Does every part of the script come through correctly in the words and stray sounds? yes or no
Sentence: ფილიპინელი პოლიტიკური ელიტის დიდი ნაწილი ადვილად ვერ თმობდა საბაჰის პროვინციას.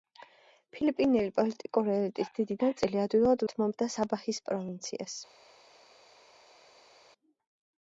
no